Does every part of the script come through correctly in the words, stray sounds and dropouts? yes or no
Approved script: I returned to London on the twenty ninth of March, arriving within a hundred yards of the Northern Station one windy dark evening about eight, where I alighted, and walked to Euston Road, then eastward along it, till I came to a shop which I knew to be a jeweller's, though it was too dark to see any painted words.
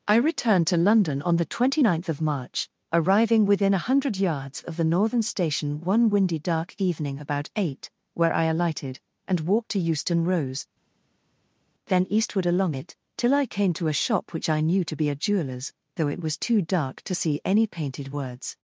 no